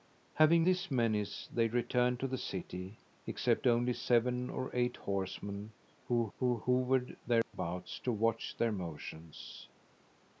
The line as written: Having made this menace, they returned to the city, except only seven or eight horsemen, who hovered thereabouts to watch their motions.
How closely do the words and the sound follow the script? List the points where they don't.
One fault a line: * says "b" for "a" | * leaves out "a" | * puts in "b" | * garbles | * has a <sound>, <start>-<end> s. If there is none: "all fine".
* leaves out "made"
* puts in "who"
* has a dropout, 7.4-7.5 s